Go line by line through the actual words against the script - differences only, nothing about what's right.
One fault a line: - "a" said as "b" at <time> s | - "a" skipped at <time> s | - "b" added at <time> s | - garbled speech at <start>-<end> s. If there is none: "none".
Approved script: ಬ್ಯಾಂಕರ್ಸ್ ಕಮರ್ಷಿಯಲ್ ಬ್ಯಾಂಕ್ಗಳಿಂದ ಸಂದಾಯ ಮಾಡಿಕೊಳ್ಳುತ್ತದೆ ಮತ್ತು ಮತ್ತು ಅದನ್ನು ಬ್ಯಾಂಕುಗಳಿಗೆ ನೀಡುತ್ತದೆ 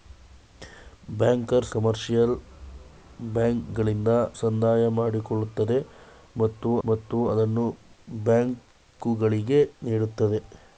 none